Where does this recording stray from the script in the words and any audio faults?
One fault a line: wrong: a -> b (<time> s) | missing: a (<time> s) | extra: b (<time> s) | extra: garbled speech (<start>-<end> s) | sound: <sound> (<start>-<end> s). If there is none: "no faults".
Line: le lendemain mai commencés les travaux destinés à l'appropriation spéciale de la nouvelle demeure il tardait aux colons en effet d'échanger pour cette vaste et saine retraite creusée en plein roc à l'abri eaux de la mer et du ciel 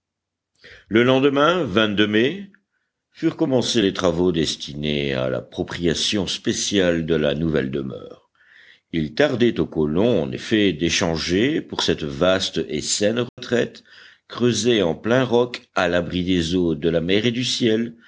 extra: furent (3.1 s)
sound: dropout (13.3-13.4 s)
extra: des (16.2 s)